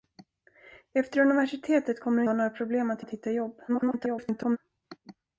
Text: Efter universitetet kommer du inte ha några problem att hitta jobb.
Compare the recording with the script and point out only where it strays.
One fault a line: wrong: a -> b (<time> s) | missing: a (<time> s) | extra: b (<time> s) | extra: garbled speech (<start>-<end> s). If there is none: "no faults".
missing: inte (2.2 s)
extra: att (3.0 s)
extra: garbled speech (3.7-4.6 s)